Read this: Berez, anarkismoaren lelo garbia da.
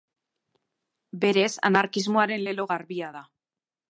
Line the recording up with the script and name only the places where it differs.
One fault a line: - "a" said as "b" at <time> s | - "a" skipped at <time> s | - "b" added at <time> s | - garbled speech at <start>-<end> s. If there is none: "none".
none